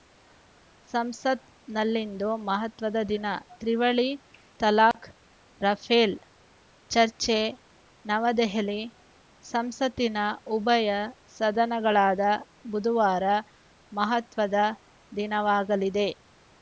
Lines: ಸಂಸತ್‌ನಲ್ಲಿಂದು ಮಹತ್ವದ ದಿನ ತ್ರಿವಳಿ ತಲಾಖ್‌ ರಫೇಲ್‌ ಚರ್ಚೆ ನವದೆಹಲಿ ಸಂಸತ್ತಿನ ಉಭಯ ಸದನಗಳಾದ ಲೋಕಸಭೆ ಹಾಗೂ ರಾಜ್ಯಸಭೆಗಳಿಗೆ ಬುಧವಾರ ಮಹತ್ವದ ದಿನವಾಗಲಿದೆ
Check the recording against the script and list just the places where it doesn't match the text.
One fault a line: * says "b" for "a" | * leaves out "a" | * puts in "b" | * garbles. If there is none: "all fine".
* leaves out "ಲೋಕಸಭೆ ಹಾಗೂ ರಾಜ್ಯಸಭೆಗಳಿಗೆ"